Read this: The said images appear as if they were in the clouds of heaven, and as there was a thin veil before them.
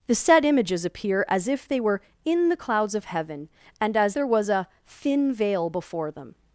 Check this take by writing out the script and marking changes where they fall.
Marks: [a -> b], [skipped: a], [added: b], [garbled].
The said images appear as if they were in the clouds of heaven, and as there was a thin veil before them.